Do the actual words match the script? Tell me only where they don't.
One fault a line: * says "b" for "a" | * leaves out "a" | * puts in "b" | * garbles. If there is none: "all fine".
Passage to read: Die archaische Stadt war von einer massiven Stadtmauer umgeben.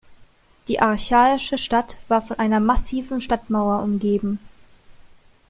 all fine